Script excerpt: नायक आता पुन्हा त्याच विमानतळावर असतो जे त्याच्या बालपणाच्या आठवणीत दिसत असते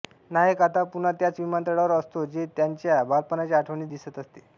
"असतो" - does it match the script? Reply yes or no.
yes